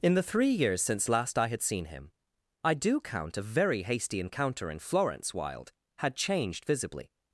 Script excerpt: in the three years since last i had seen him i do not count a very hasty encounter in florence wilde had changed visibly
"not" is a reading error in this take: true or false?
true